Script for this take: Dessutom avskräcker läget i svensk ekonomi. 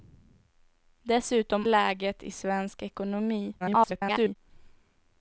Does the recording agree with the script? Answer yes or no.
no